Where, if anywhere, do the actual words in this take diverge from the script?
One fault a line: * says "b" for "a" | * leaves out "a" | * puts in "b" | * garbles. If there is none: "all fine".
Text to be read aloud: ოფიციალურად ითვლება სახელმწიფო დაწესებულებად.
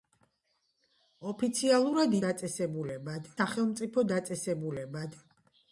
* says "დაწესებულებად" for "ითვლება"